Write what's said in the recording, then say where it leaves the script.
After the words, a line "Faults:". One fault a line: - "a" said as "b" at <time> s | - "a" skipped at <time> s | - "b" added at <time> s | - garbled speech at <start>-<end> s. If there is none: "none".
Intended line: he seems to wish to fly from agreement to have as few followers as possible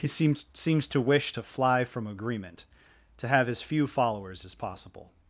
he seems seems to wish to fly from agreement to have as few followers as possible
Faults:
- "seems" added at 0.5 s